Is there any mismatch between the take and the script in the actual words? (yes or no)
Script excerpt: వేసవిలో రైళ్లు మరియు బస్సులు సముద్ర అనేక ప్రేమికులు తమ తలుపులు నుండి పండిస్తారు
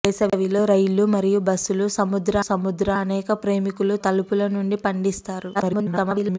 yes